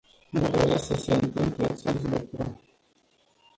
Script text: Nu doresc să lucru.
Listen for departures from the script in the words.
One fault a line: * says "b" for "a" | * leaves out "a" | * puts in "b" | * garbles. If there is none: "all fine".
* puts in "se întâmple acest"